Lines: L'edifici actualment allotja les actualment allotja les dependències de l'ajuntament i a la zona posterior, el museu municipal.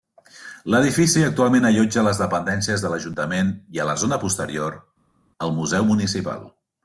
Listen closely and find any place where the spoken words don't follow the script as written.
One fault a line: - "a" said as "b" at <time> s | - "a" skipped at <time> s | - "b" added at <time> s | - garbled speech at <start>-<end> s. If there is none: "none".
- "actualment allotja les" skipped at 2.2 s